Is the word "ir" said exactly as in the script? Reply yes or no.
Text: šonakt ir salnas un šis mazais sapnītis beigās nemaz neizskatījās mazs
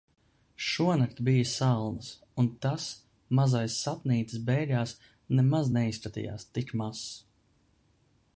no